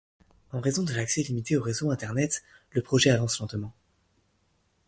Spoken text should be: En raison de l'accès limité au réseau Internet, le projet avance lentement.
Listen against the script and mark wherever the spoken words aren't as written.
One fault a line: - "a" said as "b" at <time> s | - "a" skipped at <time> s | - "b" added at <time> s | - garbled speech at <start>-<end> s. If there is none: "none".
none